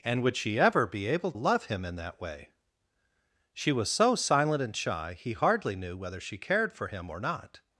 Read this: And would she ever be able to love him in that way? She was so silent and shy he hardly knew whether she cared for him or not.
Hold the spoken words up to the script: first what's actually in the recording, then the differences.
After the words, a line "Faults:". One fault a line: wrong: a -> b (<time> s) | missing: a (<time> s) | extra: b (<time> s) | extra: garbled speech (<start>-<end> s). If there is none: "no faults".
And would she ever be able love him in that way? She was so silent and shy he hardly knew whether she cared for him or not.
Faults:
missing: to (1.3 s)